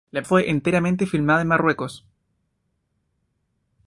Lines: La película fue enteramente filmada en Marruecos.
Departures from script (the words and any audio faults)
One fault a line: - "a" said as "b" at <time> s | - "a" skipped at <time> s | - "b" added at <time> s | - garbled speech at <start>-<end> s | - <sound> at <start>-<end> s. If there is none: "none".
- "película" skipped at 0.2 s